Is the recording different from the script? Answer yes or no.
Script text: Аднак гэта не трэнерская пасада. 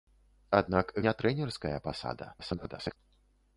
yes